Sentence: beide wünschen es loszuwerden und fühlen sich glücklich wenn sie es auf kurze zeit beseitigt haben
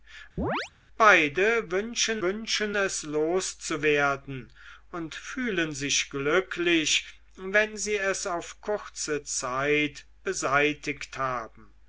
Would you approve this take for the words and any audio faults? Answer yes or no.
no